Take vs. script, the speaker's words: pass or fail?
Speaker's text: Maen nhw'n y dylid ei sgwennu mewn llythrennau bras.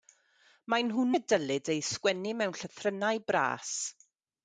pass